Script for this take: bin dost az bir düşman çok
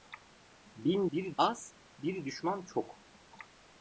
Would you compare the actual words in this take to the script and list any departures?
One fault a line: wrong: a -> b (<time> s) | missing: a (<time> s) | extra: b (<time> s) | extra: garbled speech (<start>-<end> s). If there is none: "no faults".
wrong: dost -> bir (1.1 s)